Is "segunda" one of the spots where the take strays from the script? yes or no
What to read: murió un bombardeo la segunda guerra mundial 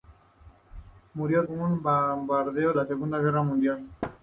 no